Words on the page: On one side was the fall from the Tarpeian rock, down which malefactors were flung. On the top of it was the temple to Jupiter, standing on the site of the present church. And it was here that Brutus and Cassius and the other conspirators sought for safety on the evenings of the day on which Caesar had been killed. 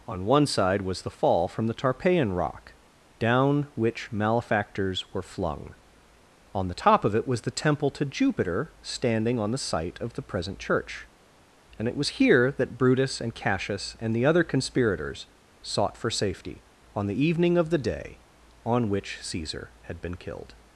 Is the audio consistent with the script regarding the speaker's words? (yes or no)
no